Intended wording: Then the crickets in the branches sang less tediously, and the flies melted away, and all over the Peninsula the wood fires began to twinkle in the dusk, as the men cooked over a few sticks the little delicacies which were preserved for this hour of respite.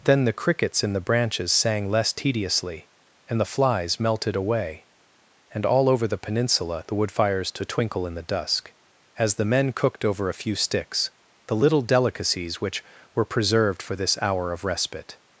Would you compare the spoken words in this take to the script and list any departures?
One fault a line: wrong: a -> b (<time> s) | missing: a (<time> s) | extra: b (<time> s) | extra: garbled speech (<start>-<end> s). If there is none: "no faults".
missing: began (7.5 s)